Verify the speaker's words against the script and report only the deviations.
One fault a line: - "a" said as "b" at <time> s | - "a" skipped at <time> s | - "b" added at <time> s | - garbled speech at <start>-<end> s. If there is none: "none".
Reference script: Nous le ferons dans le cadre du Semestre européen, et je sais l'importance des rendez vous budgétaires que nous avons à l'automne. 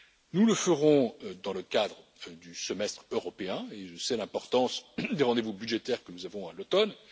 none